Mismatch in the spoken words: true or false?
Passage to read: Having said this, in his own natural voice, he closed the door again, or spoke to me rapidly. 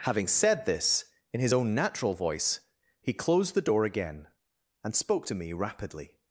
true